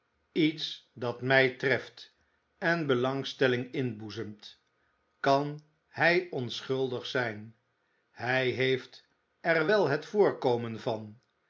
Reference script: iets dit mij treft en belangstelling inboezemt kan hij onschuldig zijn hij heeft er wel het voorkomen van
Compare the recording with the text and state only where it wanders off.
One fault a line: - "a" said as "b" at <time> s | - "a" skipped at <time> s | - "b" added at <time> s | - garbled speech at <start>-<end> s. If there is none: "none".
- "dit" said as "dat" at 0.9 s